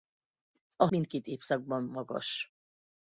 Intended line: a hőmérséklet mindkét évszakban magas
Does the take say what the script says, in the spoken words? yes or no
no